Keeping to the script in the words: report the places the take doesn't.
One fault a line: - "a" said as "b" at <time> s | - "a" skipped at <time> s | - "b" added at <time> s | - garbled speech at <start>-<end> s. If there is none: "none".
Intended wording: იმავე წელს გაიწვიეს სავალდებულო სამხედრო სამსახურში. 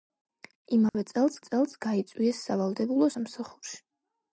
- "წელს" added at 1.5 s
- "სამხედრო" skipped at 3.1 s